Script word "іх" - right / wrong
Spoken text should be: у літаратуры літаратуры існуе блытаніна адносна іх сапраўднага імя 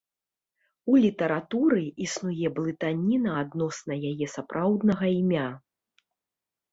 wrong